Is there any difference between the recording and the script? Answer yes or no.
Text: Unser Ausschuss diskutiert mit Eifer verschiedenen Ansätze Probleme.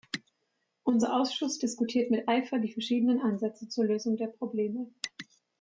yes